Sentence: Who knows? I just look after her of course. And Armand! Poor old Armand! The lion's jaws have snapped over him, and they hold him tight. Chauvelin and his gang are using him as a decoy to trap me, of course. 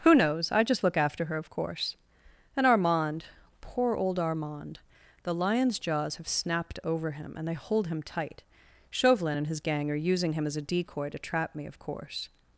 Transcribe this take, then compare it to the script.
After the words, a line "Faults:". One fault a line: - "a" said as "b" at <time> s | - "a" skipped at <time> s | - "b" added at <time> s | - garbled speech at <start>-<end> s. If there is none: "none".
Who knows? I just look after her of course. And Armand! Poor old Armand! The lion's jaws have snapped over him, and they hold him tight. Chauvelin and his gang are using him as a decoy to trap me, of course.
Faults:
none